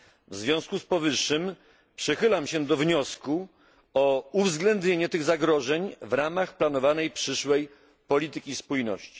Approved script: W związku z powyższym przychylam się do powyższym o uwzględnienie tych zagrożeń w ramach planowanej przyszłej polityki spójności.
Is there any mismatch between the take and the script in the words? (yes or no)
yes